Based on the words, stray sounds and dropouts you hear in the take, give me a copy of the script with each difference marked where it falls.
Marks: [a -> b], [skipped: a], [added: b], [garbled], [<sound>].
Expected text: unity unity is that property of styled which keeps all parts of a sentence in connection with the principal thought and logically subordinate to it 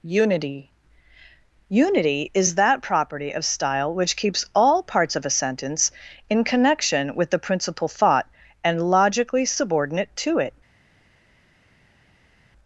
unity unity is that property of [styled -> style] which keeps all parts of a sentence in connection with the principal thought and logically subordinate to it